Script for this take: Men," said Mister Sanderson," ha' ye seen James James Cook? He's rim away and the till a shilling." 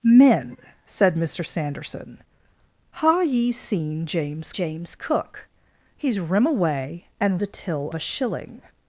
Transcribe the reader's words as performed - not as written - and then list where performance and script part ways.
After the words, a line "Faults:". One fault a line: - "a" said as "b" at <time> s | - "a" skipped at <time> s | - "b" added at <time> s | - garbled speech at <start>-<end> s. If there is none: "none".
Men," said Mister Sanderson," ha' ye seen James James Cook? He's rim away and the till a shilling."
Faults:
none